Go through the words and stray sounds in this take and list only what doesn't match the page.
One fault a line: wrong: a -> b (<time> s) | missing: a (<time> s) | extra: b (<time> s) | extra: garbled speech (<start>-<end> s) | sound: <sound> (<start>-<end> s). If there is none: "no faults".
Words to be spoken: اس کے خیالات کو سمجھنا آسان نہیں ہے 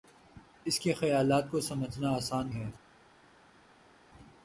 missing: نہیں (2.5 s)